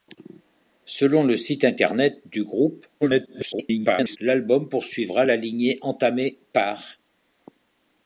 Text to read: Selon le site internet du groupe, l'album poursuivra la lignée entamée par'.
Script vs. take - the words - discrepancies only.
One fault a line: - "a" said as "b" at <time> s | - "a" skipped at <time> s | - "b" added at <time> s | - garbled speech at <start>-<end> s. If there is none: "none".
- garbled speech at 3.0-4.2 s